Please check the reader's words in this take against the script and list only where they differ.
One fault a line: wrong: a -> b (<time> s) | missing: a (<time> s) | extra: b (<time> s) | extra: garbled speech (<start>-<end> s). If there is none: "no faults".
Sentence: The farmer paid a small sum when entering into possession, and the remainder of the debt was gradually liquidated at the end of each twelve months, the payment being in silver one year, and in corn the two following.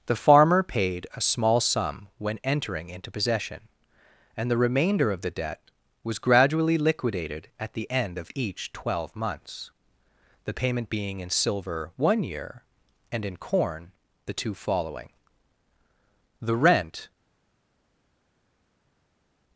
extra: The rent (16.4 s)